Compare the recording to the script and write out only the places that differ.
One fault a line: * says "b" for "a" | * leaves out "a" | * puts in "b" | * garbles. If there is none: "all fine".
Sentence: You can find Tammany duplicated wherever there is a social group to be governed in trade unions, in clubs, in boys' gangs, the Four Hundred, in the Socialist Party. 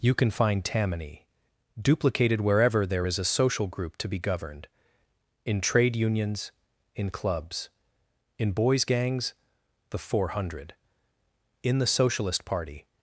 all fine